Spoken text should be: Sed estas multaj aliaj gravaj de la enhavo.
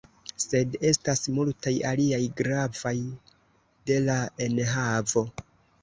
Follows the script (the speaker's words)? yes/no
yes